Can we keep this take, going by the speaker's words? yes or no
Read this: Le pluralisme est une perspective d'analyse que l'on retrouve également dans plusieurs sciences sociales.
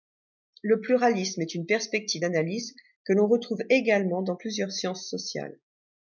yes